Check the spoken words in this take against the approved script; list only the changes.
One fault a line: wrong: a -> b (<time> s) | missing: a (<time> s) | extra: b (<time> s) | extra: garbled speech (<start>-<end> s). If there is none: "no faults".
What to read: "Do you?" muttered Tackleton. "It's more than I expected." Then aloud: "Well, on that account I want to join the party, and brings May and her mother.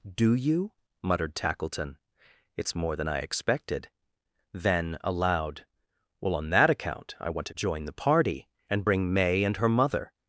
wrong: brings -> bring (8.8 s)